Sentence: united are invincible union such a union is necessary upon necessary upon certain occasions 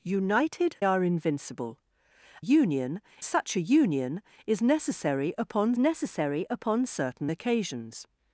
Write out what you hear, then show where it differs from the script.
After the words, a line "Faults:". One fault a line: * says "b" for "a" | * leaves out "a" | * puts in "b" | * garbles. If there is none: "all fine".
united are invincible union such a union is necessary upon necessary upon certain occasions
Faults:
all fine